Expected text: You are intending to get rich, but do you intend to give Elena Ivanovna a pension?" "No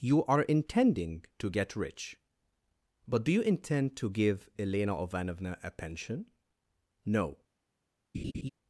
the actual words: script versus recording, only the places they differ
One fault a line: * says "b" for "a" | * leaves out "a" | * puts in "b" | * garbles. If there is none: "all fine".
all fine